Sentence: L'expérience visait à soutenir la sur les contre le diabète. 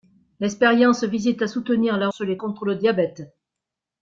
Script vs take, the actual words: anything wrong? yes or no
no